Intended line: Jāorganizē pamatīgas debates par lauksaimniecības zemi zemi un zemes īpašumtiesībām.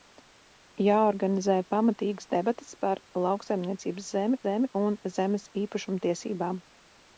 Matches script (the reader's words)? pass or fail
pass